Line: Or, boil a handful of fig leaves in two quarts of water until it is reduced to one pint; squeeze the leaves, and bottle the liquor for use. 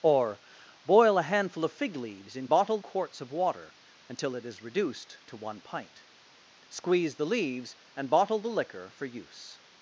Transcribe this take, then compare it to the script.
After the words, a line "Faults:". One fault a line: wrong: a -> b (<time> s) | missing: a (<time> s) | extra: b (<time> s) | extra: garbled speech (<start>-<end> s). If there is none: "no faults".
Or, boil a handful of fig leaves in bottle quarts of water until it is reduced to one pint; squeeze the leaves, and bottle the liquor for use.
Faults:
wrong: two -> bottle (2.5 s)